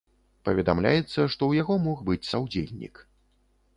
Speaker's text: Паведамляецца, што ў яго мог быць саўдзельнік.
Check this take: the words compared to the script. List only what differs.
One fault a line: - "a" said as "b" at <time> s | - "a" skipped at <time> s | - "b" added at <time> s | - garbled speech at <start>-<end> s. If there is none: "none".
none